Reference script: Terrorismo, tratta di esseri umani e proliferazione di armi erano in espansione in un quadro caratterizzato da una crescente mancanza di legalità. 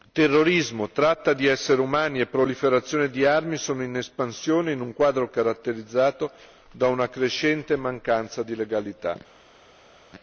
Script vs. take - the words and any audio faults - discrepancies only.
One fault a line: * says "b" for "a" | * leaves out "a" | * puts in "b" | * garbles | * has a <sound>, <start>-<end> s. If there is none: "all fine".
* says "sono" for "erano"